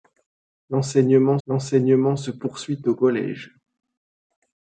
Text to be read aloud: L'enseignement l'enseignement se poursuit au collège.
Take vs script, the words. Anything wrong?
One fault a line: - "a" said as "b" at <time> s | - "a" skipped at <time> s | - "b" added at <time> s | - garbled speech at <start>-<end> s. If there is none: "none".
none